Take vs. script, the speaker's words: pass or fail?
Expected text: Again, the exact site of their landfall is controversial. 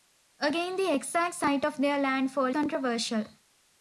fail